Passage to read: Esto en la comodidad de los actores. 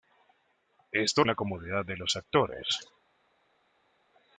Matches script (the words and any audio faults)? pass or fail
pass